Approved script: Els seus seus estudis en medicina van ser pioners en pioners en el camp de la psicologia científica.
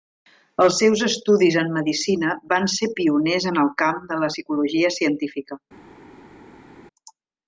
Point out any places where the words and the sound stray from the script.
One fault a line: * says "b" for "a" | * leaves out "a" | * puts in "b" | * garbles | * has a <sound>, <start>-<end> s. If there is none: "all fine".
* leaves out "seus"
* leaves out "pioners en"